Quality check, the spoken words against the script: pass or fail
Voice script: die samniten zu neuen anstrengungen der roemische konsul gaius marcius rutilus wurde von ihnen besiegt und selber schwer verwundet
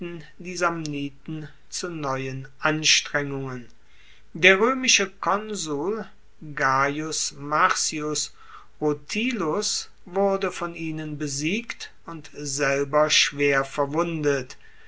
pass